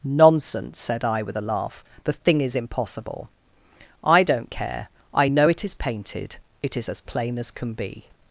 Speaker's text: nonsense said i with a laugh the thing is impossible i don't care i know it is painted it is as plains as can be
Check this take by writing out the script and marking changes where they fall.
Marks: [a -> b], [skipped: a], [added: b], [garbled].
nonsense said i with a laugh the thing is impossible i don't care i know it is painted it is as [plains -> plain] as can be